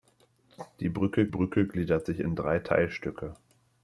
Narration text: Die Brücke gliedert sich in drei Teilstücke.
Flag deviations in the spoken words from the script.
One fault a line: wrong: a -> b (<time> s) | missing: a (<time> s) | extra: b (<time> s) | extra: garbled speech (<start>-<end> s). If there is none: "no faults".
extra: Brücke (1.3 s)